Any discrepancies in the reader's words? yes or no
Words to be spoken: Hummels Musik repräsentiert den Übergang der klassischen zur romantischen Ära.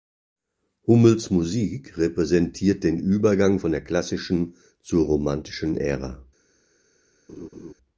yes